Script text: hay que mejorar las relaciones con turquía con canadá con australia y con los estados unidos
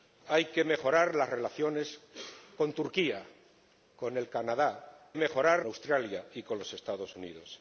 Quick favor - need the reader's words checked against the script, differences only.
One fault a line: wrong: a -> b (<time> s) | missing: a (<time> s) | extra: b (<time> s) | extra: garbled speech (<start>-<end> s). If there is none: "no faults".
wrong: con -> mejorar (5.1 s)